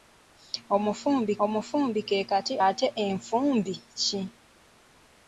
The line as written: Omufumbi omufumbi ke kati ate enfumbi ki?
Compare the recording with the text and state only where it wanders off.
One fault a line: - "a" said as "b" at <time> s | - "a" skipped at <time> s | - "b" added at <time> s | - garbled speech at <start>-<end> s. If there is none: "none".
none